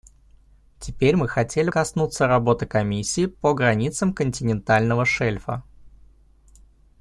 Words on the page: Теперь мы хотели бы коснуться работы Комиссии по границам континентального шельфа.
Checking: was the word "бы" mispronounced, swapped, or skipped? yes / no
yes